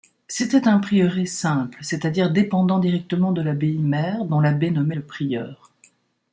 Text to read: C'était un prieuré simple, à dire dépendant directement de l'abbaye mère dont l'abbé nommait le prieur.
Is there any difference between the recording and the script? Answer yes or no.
yes